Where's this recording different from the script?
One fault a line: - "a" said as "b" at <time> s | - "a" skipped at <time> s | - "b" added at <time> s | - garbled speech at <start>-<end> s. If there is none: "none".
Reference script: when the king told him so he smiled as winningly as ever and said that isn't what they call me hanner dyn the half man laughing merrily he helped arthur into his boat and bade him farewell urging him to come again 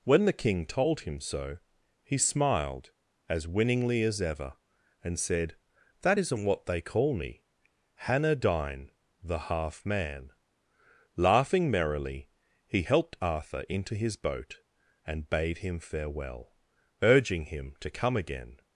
none